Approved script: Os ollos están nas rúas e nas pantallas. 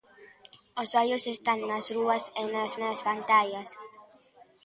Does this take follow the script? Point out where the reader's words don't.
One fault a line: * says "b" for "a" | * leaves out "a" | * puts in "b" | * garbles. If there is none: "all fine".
* puts in "nas"